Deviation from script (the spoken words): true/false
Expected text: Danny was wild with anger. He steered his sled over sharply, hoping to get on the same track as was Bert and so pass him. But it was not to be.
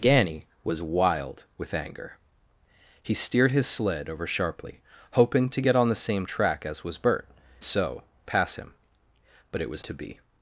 true